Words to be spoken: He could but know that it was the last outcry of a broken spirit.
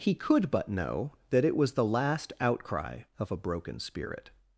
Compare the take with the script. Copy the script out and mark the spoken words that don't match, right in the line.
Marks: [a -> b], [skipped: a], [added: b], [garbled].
He could but know that it was the last outcry of a broken spirit.